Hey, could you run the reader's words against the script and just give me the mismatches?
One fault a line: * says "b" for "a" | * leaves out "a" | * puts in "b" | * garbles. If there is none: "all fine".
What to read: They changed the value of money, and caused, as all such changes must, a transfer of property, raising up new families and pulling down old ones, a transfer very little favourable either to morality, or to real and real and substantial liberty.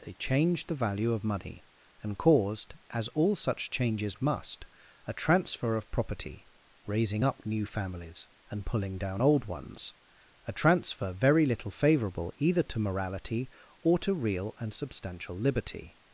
* leaves out "real and"